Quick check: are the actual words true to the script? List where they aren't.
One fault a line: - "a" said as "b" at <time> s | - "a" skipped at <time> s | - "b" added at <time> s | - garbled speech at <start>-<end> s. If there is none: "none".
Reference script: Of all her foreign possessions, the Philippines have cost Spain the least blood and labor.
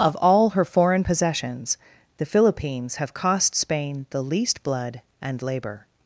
none